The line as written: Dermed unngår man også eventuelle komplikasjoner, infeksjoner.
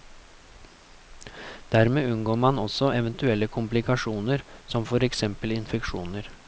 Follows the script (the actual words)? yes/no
no